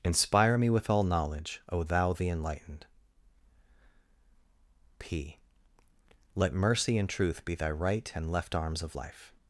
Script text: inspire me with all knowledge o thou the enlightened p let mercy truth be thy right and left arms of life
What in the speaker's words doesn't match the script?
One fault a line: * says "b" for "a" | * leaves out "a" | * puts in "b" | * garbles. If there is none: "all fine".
* puts in "and"